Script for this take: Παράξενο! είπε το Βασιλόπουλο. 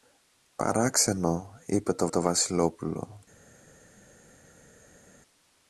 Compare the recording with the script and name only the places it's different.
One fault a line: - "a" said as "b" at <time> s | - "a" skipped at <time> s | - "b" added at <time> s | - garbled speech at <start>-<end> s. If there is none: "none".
- "το" added at 2.1 s